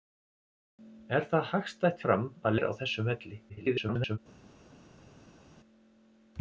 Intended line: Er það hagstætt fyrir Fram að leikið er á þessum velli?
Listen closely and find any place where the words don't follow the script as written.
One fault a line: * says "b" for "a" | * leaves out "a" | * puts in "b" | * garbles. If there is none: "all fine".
* leaves out "fyrir"
* leaves out "leikið"
* garbles